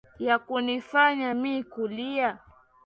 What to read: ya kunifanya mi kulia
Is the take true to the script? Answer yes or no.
yes